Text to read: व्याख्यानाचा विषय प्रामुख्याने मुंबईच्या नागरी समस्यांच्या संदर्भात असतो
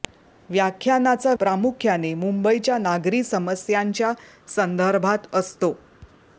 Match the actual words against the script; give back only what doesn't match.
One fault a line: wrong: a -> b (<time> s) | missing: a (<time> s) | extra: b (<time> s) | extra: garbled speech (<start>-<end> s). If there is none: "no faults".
missing: विषय (1.3 s)